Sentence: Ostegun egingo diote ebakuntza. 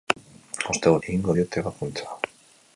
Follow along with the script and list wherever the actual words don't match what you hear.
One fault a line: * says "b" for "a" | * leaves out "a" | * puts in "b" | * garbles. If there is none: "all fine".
all fine